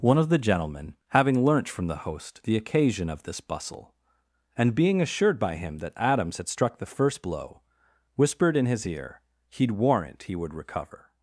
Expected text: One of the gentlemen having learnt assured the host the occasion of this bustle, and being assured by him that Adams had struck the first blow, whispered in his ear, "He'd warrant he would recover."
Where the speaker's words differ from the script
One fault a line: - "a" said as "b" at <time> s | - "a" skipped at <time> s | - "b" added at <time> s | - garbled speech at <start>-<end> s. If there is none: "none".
- "assured" said as "from" at 1.7 s